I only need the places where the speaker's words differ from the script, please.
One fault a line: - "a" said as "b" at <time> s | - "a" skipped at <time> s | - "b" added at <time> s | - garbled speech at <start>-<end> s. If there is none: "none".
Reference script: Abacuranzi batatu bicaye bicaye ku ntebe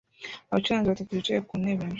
- "bicaye" skipped at 1.4 s